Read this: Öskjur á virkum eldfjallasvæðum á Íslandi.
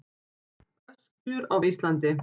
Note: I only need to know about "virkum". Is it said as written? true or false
false